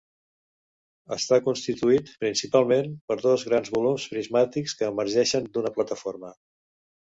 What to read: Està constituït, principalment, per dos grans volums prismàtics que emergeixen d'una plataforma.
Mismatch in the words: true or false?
false